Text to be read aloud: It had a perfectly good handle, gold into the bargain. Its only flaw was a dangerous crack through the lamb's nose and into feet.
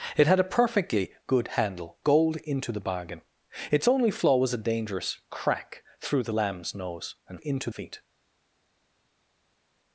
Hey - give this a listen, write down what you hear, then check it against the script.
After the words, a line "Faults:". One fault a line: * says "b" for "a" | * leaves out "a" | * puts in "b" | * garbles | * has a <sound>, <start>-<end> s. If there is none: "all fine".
It had a perfectly good handle, gold into the bargain. Its only flaw was a dangerous crack through the lamb's nose and into feet.
Faults:
all fine